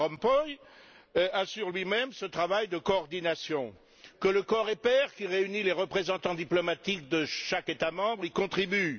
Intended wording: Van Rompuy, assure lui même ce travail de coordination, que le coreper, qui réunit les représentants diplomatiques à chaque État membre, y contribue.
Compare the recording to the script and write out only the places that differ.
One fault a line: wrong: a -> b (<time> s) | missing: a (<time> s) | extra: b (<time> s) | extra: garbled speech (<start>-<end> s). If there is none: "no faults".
wrong: à -> de (7.1 s)